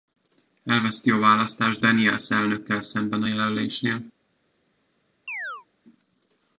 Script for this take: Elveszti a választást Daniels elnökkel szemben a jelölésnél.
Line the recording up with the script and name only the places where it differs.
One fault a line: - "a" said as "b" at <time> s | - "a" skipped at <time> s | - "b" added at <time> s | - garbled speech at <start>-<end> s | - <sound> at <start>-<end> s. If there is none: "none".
- chirp at 5.3-5.7 s